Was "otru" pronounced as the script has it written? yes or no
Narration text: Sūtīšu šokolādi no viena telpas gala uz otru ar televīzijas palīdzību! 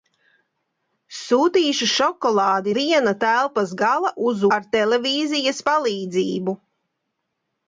no